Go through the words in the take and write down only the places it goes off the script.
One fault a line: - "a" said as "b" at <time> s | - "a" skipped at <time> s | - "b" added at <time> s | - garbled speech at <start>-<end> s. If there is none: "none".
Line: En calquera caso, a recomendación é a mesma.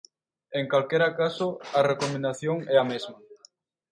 none